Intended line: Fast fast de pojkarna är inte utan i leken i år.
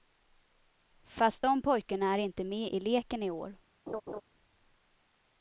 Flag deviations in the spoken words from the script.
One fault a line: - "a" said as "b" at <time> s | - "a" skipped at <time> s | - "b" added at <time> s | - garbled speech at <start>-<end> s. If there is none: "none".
- "fast" skipped at 1.4 s
- "utan" said as "med" at 2.4 s